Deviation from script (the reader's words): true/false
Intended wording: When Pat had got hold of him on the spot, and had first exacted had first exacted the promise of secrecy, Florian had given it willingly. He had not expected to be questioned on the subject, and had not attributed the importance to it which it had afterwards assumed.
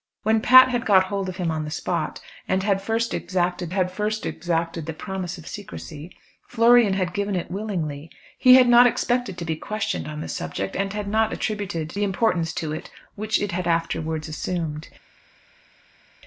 false